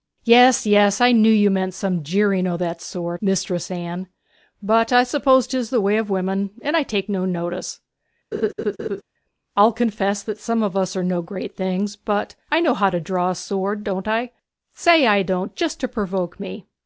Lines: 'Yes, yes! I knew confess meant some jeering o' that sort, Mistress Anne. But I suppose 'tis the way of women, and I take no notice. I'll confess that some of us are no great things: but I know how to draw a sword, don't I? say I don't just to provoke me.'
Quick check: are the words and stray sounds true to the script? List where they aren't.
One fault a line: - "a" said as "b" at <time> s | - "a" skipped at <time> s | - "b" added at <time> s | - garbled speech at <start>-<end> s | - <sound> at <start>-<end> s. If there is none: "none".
- "confess" said as "you" at 1.3 s
- laugh at 8.3-9.0 s